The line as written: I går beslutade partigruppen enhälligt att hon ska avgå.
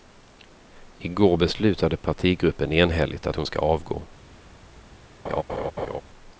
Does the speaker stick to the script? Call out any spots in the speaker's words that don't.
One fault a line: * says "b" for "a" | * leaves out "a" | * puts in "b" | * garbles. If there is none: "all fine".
all fine